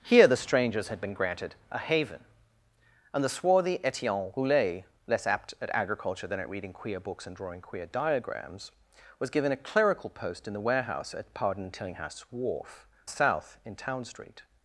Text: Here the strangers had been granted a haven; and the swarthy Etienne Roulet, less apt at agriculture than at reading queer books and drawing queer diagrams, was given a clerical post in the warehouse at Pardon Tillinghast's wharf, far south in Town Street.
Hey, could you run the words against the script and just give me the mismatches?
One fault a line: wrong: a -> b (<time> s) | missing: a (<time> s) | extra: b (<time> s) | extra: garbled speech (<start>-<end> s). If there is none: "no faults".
missing: far (12.9 s)